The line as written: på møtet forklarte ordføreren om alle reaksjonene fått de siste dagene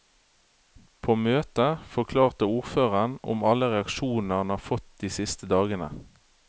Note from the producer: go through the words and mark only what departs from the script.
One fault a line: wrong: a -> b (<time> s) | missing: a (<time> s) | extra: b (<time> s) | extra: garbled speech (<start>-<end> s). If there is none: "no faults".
extra: han har (4.4 s)